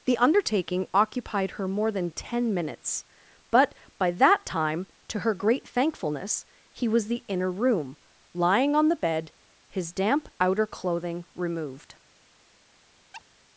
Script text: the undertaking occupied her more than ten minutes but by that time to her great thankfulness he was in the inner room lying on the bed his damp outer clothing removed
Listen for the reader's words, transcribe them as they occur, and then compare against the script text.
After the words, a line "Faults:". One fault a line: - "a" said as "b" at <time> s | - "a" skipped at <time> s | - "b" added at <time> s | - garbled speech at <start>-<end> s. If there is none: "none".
the undertaking occupied her more than ten minutes but by that time to her great thankfulness he was the inner room lying on the bed his damp outer clothing removed
Faults:
- "in" skipped at 7.1 s